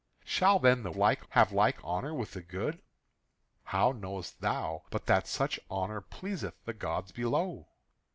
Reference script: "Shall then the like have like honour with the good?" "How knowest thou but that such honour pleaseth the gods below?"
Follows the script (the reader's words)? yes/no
yes